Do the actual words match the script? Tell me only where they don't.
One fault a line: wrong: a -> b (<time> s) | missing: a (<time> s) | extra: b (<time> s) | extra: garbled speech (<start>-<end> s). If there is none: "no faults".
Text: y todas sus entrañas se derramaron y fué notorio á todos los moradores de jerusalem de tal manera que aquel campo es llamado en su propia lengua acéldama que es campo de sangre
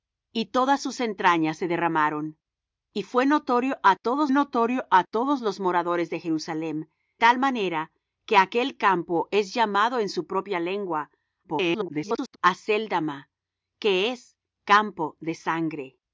extra: notorio á todos (4.3 s)
missing: de (6.9 s)
extra: garbled speech (11.4-12.4 s)